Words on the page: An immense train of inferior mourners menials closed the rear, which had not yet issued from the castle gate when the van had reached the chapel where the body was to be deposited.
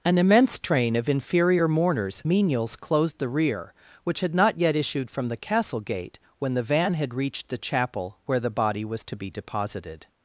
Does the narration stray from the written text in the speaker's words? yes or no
no